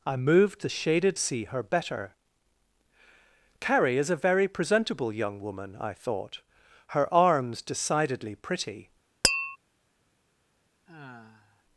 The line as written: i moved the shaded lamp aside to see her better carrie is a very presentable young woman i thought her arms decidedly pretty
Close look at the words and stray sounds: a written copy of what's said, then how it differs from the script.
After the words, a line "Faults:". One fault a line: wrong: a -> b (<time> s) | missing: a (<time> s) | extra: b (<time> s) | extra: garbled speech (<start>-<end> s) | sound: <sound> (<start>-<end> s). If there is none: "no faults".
i moved the shaded see her better carrie is a very presentable young woman i thought her arms decidedly pretty
Faults:
missing: lamp aside to (1.2 s)
sound: tap (9.2-9.6 s)
sound: sigh (10.9-11.6 s)